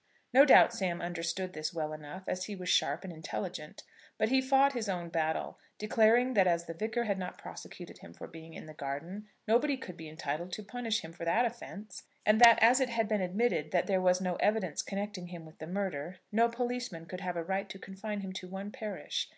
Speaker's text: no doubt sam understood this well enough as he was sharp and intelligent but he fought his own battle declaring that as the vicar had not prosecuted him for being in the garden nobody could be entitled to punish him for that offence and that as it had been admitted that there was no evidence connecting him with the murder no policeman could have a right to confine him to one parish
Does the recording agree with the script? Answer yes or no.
yes